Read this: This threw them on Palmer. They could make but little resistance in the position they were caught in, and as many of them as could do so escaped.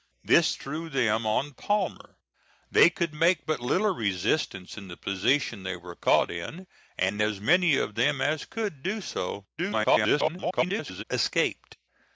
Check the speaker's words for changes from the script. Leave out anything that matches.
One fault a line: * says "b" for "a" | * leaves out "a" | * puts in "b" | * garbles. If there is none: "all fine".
* garbles